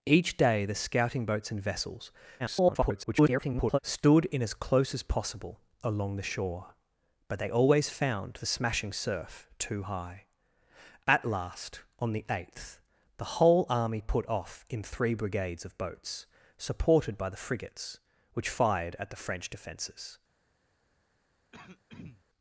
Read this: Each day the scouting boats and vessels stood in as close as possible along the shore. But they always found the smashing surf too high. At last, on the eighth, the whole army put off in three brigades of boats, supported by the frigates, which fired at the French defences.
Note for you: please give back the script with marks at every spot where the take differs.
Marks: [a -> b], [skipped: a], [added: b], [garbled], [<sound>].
Each day the scouting boats and vessels [garbled] stood in as close as possible along the shore. But they always found the smashing surf too high. At last, on the eighth, the whole army put off in three brigades of boats, supported by the frigates, which fired at the French defences. [throat clearing]